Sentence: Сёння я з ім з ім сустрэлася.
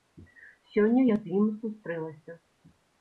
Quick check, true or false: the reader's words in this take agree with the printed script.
false